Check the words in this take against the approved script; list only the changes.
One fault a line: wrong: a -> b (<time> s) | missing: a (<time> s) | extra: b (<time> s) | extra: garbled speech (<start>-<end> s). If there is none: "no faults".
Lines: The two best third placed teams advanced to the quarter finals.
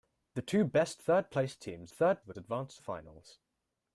wrong: advanced -> third (1.9 s)
wrong: quarter -> advanced (2.4 s)